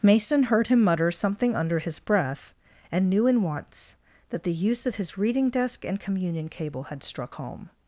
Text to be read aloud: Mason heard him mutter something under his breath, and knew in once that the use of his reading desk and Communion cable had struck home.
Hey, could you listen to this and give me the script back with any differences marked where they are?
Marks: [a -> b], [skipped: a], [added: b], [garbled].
Mason heard him mutter something under his breath, and knew in once that the use of his reading desk and Communion cable had struck home.